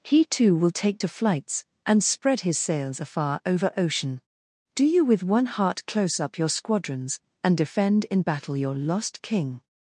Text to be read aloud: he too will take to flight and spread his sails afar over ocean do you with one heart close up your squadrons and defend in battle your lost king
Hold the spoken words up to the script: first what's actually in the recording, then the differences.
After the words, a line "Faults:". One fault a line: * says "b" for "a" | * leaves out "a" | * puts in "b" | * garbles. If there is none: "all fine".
he too will take to flights and spread his sails afar over ocean do you with one heart close up your squadrons and defend in battle your lost king
Faults:
* says "flights" for "flight"